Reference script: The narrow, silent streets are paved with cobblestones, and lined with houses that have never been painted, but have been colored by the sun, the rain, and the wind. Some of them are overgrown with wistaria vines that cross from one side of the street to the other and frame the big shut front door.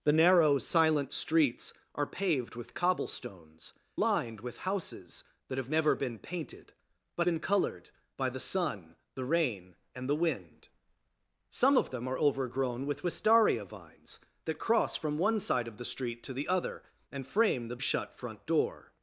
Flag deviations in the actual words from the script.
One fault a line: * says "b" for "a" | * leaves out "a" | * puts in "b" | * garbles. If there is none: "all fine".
* leaves out "and"
* leaves out "have"
* leaves out "big"